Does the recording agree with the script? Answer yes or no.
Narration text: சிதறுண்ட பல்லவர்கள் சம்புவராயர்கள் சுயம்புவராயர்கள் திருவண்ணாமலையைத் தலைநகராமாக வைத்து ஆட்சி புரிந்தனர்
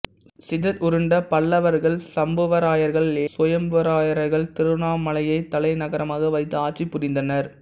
yes